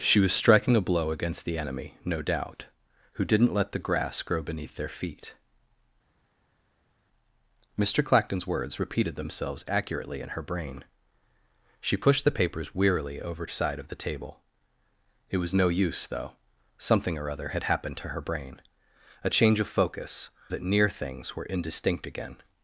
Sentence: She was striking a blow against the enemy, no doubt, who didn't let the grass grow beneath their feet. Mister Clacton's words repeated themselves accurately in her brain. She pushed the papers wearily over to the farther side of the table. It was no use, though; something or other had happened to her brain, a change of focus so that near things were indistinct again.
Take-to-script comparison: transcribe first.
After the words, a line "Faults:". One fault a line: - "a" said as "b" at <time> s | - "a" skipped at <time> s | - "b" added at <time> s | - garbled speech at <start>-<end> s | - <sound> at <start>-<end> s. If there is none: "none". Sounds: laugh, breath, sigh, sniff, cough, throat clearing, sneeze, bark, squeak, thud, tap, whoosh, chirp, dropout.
She was striking a blow against the enemy, no doubt, who didn't let the grass grow beneath their feet. Mister Clacton's words repeated themselves accurately in her brain. She pushed the papers wearily over side of the table. It was no use, though; something or other had happened to her brain, a change of focus that near things were indistinct again.
Faults:
- "to the farther" skipped at 13.5 s
- "so" skipped at 20.3 s